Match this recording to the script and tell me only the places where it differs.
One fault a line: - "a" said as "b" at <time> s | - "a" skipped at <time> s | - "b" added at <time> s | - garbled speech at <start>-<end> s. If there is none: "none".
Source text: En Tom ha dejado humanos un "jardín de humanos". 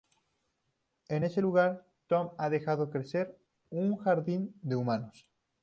- "ese lugar" added at 1.2 s
- "humanos" said as "crecer" at 2.9 s